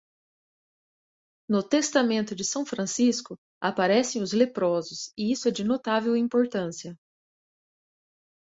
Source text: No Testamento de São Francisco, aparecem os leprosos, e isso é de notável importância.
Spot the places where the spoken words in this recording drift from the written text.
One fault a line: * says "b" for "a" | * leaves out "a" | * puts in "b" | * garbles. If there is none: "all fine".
all fine